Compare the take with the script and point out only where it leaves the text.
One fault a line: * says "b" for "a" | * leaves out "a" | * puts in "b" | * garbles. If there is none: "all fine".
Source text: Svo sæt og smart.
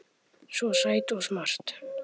all fine